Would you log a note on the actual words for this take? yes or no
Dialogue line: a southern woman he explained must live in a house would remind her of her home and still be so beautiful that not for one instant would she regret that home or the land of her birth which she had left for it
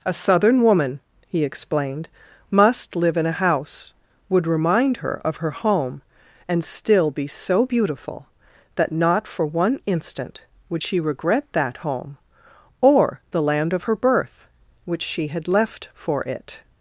no